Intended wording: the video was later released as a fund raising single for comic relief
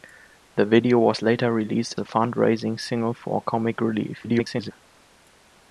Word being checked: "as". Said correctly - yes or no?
no